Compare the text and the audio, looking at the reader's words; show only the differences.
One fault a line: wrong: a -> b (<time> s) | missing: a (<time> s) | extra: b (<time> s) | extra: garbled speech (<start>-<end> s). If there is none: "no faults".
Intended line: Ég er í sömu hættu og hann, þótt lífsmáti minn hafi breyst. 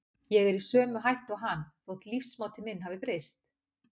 no faults